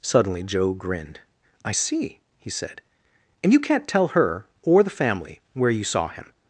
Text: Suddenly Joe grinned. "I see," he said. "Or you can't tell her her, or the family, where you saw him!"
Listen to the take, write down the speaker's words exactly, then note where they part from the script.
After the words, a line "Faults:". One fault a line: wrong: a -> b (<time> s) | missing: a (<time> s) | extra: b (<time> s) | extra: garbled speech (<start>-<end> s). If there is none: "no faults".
Suddenly Joe grinned. "I see," he said. "And you can't tell her, or the family, where you saw him!"
Faults:
wrong: Or -> And (3.4 s)
missing: her (4.5 s)